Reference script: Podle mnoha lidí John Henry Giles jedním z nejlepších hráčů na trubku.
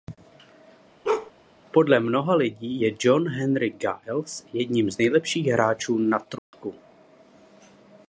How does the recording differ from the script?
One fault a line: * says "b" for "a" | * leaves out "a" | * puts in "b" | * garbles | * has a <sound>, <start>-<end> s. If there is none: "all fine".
* has a bark, 1.0-1.3 s
* puts in "je"
* has a dropout, 6.4-6.5 s